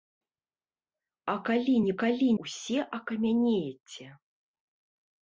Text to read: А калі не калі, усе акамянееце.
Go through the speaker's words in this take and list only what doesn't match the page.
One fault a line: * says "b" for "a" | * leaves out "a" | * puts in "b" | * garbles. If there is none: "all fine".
all fine